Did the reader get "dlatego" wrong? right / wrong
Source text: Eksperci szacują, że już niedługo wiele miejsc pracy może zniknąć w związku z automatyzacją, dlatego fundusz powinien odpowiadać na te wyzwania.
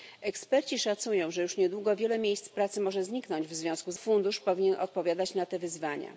wrong